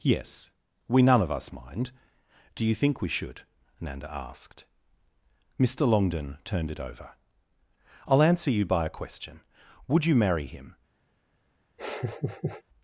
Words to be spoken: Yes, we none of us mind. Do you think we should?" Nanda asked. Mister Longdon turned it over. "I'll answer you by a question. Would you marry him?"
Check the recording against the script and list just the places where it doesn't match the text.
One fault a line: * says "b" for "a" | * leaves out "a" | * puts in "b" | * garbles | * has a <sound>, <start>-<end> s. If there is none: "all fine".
* has a laugh, 11.8-12.6 s